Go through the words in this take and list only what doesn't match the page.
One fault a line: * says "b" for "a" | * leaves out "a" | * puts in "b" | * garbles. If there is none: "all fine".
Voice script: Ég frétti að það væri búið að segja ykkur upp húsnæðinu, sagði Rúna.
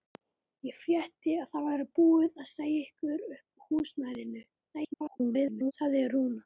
* garbles